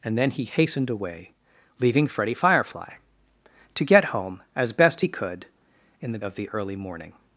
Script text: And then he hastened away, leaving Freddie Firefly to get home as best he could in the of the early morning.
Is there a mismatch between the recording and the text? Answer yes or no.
no